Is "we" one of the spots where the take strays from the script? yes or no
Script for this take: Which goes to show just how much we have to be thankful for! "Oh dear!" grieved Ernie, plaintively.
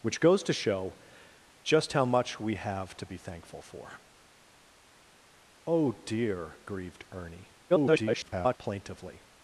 no